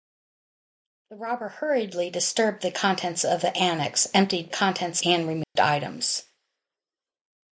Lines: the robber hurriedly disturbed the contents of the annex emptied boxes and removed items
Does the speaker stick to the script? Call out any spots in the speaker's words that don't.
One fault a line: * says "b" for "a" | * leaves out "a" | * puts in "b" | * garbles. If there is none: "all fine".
* says "contents" for "boxes"